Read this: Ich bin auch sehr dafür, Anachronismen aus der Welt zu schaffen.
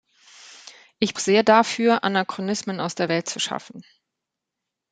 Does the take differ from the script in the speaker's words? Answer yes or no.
yes